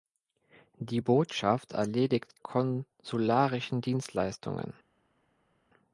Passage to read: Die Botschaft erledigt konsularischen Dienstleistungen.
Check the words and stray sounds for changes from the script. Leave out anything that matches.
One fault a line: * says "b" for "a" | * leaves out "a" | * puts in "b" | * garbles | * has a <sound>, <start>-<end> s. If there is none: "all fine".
all fine